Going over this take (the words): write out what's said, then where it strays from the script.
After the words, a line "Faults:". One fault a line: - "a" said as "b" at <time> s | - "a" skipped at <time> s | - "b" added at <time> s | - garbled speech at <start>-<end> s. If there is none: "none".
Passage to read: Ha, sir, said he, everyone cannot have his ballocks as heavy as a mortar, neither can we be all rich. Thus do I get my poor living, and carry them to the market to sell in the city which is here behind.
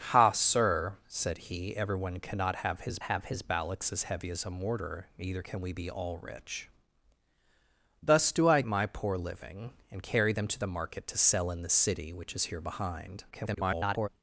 Ha, sir, said he, everyone cannot have his have his ballocks as heavy as a mortar, neither can we be all rich. Thus do I my poor living, and carry them to the market to sell in the city which is here behind. [garbled]
Faults:
- "have his" added at 3.0 s
- "get" skipped at 8.6 s
- garbled speech at 13.3-14.1 s